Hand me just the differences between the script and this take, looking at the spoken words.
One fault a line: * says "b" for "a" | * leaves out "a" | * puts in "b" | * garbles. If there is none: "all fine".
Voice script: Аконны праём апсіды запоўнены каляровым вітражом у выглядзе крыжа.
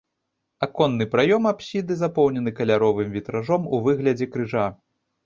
all fine